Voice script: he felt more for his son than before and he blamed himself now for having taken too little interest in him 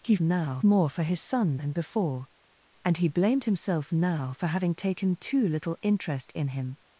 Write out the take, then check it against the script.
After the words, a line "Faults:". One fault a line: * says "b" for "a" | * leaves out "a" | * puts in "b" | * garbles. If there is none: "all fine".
he now more for his son than before and he blamed himself now for having taken too little interest in him
Faults:
* says "now" for "felt"